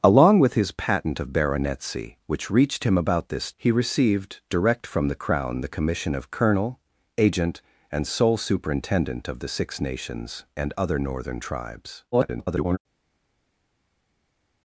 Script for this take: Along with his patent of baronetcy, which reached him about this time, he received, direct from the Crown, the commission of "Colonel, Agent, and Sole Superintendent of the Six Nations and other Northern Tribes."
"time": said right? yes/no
no